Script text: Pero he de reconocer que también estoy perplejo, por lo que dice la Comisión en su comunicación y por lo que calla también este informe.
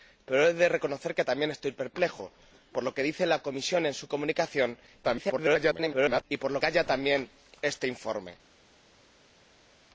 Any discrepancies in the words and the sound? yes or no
yes